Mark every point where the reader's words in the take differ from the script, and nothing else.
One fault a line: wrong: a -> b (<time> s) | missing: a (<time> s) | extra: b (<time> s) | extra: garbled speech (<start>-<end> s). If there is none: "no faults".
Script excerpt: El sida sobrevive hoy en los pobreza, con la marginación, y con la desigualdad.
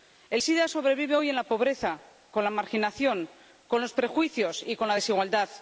wrong: los -> la (1.3 s)
extra: con los prejuicios (3.7 s)